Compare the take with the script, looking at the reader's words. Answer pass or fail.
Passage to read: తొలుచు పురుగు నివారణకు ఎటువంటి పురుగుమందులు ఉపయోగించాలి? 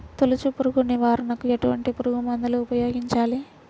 pass